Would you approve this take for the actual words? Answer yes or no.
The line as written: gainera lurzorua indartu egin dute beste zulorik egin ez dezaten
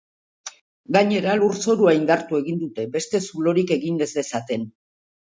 yes